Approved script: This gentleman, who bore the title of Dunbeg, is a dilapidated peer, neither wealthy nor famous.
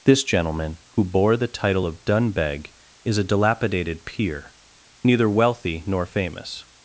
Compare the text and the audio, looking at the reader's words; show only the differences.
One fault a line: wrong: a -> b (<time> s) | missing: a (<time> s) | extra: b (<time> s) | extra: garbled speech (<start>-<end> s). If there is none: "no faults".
no faults